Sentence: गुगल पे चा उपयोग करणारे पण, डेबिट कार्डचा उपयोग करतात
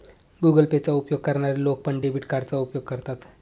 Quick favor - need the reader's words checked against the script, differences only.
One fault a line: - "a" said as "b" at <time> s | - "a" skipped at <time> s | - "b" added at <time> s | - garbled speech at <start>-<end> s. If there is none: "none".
- "लोक" added at 1.6 s